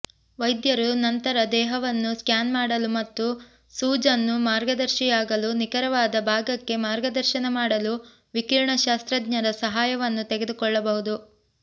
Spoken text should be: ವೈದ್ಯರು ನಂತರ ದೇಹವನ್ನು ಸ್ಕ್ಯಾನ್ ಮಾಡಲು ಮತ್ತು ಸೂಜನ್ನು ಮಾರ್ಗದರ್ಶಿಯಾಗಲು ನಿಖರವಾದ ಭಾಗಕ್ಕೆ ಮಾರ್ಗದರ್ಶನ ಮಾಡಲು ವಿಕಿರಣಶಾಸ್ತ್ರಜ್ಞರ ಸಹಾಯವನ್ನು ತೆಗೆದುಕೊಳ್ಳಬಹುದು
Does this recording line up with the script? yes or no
yes